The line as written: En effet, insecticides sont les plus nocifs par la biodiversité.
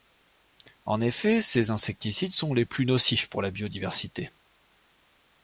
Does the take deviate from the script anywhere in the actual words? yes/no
yes